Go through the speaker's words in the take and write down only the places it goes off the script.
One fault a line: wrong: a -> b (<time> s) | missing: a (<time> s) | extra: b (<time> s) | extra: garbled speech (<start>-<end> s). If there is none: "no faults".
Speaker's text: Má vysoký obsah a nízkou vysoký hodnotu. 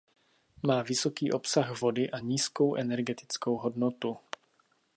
extra: vody (1.8 s)
wrong: vysoký -> energetickou (2.8 s)